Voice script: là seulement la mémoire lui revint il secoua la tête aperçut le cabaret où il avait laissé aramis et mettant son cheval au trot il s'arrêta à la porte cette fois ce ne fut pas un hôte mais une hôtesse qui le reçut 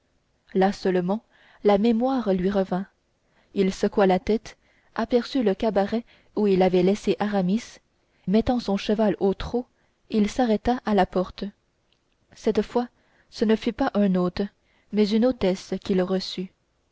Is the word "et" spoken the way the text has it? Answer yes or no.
no